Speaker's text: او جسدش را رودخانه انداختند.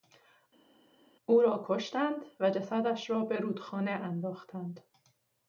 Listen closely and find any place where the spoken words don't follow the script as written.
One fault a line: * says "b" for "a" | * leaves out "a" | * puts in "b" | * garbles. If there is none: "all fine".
* puts in "را کشتند و"
* puts in "به"